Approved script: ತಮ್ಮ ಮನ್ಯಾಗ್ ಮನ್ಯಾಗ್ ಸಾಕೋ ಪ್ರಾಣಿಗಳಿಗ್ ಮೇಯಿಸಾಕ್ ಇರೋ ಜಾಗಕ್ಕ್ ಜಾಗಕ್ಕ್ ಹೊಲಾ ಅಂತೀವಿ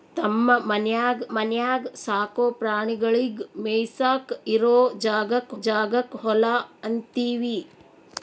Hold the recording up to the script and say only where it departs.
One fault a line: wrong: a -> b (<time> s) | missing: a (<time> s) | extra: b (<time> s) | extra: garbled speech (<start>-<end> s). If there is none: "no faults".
no faults